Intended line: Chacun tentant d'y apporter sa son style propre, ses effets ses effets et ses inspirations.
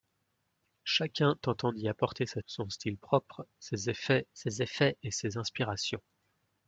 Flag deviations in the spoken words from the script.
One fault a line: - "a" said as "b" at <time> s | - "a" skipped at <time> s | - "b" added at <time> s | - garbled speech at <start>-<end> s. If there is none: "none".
none